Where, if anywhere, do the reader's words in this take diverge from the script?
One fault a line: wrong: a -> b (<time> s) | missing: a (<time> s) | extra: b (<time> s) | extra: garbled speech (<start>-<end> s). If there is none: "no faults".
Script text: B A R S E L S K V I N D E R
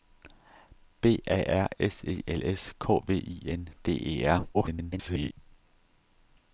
extra: garbled speech (4.5-5.3 s)